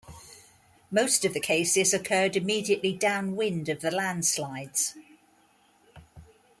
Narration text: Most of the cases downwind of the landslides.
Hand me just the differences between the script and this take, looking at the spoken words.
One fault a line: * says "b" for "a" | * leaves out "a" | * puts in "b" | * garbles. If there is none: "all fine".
* puts in "occurred immediately"